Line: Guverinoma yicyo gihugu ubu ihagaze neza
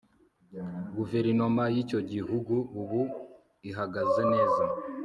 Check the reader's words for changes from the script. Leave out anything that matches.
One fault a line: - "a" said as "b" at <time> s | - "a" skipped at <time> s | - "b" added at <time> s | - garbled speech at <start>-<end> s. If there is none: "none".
none